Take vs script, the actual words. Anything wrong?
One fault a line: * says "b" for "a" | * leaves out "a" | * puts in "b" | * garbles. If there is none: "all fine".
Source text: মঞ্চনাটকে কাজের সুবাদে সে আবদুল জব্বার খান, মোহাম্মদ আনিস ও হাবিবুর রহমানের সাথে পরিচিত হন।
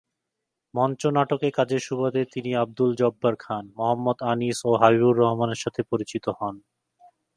* says "তিনি" for "সে"